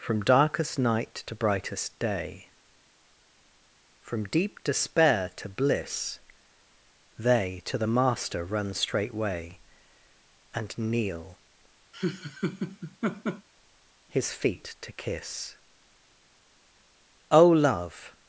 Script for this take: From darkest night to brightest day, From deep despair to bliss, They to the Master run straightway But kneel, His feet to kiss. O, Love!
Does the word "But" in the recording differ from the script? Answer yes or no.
yes